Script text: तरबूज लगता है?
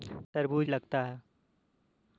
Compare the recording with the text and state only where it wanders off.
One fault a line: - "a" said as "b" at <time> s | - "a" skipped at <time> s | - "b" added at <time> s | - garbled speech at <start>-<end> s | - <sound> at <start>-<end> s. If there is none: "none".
none